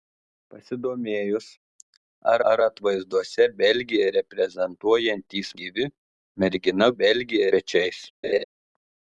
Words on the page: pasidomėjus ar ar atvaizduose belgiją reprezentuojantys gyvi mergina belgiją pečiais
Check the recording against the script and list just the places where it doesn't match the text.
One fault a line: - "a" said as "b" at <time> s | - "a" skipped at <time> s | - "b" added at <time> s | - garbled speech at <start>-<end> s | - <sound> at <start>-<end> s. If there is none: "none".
- laugh at 8.2-8.4 s